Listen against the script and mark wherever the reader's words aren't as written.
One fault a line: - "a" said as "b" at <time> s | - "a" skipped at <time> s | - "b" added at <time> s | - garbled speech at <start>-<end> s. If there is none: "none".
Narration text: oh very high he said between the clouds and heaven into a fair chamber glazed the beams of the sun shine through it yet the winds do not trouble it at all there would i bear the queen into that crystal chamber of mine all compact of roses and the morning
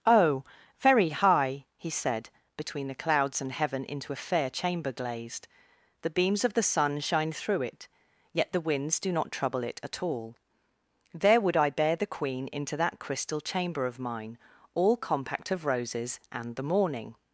none